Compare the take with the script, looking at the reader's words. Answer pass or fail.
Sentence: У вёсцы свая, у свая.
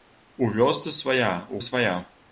pass